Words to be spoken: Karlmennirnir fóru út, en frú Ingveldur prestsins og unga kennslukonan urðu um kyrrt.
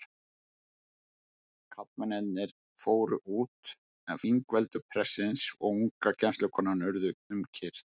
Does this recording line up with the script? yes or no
no